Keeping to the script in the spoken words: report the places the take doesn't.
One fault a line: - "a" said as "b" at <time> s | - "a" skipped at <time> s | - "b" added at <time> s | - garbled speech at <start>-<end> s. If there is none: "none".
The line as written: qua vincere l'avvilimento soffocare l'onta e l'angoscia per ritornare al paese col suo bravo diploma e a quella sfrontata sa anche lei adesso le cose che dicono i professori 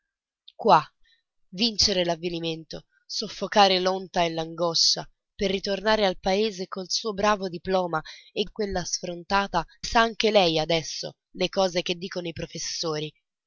none